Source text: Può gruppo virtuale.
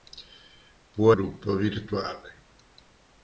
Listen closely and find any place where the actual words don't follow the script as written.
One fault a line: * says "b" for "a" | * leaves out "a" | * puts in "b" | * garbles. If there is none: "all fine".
all fine